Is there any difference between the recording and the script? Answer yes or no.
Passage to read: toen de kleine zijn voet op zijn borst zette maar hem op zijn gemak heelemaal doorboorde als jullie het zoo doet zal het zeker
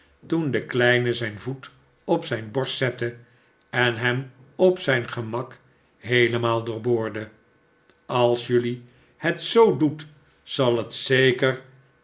yes